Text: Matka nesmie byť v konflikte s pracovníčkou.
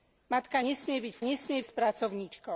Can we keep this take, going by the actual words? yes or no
no